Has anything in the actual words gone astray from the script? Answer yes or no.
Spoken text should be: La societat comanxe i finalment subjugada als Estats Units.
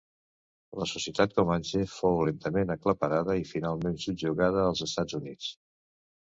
yes